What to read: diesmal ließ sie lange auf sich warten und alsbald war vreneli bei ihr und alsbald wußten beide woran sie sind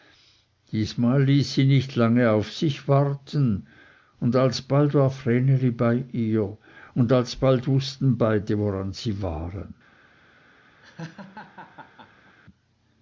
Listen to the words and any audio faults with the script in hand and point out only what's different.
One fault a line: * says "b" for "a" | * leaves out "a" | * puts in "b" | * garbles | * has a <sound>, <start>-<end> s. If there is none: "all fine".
* puts in "nicht"
* says "waren" for "sind"
* has a laugh, 10.8-12.4 s